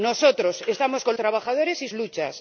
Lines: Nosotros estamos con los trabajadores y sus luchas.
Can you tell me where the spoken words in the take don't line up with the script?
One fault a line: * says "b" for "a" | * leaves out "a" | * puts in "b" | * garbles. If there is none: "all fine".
* leaves out "los"
* leaves out "sus"